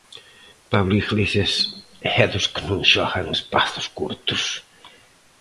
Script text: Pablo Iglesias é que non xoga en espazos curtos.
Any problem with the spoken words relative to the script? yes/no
yes